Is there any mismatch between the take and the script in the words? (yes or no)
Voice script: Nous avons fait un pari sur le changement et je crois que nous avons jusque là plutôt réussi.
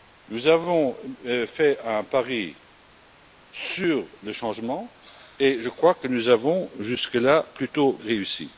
no